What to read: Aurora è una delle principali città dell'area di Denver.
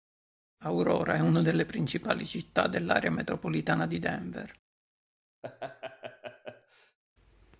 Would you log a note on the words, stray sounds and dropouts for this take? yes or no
yes